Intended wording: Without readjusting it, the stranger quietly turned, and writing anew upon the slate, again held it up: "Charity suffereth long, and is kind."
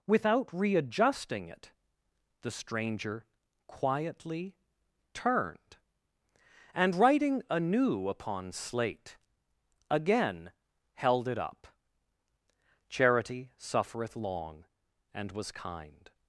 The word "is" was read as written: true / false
false